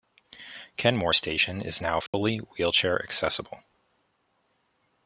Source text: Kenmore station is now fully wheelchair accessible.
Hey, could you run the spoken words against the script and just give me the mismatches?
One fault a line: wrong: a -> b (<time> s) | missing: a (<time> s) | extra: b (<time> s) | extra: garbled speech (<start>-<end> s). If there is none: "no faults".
no faults